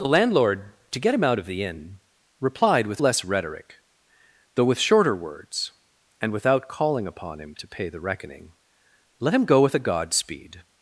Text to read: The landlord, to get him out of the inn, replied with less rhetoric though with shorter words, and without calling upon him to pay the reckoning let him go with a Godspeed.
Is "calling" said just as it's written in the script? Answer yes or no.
yes